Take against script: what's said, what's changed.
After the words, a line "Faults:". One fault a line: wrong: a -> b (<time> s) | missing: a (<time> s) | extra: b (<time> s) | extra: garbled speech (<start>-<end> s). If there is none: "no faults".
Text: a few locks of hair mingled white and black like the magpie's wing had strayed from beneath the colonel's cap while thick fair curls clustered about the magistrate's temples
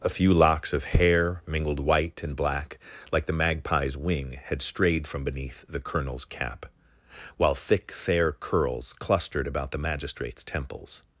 a few locks of hair mingled white and black like the magpie's wing had strayed from beneath the colonel's cap while thick fair curls clustered about the magistrate's temples
Faults:
no faults